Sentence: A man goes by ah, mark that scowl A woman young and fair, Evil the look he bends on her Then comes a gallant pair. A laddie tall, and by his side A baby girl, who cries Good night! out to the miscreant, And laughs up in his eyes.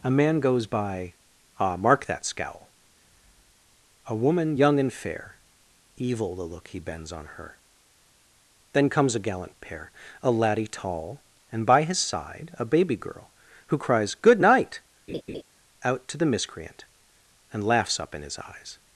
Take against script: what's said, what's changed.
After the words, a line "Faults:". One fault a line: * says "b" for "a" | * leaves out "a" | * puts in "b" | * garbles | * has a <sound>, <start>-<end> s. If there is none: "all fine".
A man goes by ah, mark that scowl A woman young and fair, Evil the look he bends on her Then comes a gallant pair. A laddie tall, and by his side A baby girl, who cries Good night! out to the miscreant, And laughs up in his eyes.
Faults:
* has a laugh, 15.1-15.4 s